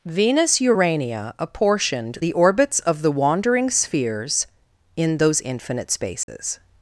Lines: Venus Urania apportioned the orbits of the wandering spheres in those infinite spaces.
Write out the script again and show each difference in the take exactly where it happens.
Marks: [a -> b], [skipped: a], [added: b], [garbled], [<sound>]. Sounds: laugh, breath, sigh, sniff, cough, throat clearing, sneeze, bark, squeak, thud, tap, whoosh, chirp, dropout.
Venus Urania apportioned the orbits of the wandering spheres in those infinite spaces. [dropout]